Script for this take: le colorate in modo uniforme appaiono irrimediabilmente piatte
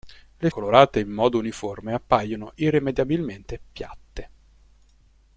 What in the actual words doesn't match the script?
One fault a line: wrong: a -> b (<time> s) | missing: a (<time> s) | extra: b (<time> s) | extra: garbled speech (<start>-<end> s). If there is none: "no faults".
no faults